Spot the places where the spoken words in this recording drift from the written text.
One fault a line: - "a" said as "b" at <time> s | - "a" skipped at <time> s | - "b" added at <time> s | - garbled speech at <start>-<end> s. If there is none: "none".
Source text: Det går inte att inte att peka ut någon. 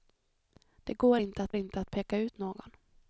none